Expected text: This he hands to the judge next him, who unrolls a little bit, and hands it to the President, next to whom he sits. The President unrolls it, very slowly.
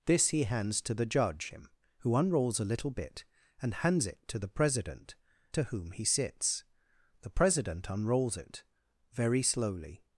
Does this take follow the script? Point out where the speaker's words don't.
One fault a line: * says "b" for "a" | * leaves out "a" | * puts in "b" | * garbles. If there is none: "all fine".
* leaves out "next"
* leaves out "next"